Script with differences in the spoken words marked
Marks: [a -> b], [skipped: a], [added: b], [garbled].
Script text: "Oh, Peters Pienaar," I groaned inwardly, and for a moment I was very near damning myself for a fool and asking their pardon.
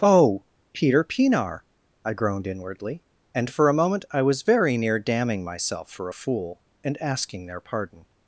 "Oh, [Peters -> Peter] Pienaar," I groaned inwardly, and for a moment I was very near damning myself for a fool and asking their pardon.